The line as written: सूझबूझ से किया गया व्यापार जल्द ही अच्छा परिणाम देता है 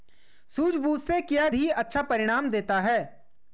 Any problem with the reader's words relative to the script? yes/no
yes